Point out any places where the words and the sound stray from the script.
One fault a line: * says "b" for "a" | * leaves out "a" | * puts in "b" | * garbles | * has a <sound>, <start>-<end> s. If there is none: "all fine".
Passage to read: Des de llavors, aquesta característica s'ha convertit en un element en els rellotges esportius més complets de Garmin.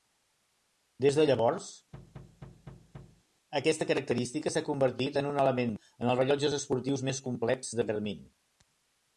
* has a thud, 1.9-3.2 s